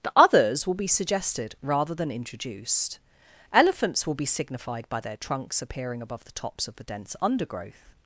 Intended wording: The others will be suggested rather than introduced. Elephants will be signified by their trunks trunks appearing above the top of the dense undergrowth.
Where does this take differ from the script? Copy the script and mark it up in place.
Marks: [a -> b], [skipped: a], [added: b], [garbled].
The others will be suggested rather than introduced. Elephants will be signified by their trunks [skipped: trunks] appearing above the [top -> tops] of the dense undergrowth.